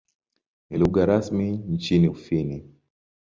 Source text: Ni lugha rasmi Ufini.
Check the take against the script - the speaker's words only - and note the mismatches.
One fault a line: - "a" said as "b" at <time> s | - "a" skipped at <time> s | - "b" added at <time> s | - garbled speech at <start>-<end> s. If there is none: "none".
- "nchini" added at 1.5 s